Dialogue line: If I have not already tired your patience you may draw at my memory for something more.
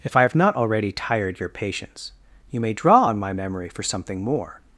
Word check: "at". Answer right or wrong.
wrong